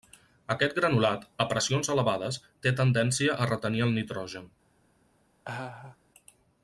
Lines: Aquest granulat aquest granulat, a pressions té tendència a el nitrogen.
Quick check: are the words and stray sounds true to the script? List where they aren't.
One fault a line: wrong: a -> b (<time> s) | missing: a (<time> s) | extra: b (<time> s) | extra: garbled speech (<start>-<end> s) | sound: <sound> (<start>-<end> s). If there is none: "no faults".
missing: aquest granulat (1.3 s)
extra: elevades (2.0 s)
extra: retenir (3.5 s)
sound: laugh (5.4-6.0 s)